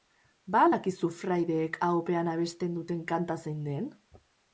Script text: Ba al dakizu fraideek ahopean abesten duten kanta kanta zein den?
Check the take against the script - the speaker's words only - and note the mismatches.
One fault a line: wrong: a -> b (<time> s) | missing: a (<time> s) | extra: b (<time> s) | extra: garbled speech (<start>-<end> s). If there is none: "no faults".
missing: kanta (3.4 s)